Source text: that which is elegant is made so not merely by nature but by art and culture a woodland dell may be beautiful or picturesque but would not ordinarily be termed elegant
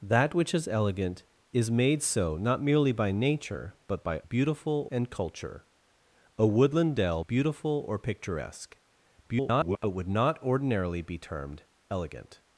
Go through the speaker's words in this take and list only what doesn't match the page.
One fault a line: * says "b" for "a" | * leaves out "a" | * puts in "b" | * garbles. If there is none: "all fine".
* says "beautiful" for "art"
* leaves out "may be"
* garbles